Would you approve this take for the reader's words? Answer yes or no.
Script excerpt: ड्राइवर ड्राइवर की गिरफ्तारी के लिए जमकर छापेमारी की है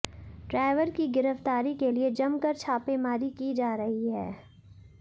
no